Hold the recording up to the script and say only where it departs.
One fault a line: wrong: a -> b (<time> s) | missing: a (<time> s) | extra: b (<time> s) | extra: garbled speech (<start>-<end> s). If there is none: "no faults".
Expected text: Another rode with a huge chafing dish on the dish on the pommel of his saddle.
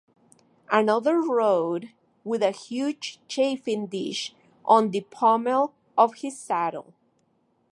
missing: dish on the (5.0 s)